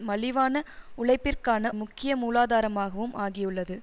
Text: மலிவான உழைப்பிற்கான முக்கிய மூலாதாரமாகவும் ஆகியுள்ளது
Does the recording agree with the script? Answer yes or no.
yes